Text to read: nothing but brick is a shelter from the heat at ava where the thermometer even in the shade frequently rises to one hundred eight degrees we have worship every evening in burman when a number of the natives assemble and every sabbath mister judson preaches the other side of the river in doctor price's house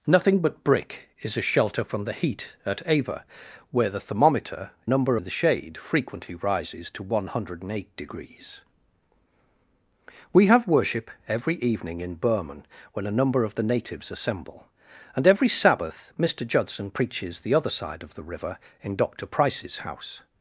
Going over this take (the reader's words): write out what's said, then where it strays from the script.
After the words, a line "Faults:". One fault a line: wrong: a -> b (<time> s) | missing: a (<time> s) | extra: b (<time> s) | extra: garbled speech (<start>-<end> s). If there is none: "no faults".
nothing but brick is a shelter from the heat at ava where the thermometer number in the shade frequently rises to one hundred eight degrees we have worship every evening in burman when a number of the natives assemble and every sabbath mister judson preaches the other side of the river in doctor price's house
Faults:
wrong: even -> number (4.9 s)